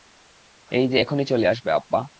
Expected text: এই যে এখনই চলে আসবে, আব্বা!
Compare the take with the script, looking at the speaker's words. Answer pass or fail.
pass